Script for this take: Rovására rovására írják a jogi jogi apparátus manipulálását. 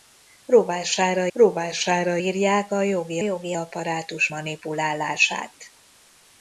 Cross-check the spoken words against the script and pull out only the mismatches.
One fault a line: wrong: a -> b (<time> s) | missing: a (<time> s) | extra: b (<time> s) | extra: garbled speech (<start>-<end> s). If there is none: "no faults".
no faults